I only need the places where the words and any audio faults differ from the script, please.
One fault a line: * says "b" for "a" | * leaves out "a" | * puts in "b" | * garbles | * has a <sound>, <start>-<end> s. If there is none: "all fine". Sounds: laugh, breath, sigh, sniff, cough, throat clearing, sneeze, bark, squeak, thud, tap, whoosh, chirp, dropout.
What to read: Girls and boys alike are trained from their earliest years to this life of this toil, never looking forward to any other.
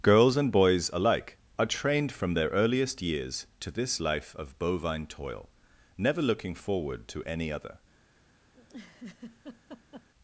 * says "bovine" for "this"
* has a laugh, 8.5-10.1 s